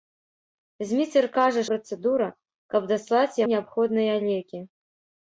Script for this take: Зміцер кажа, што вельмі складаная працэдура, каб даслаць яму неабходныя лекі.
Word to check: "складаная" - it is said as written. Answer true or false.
false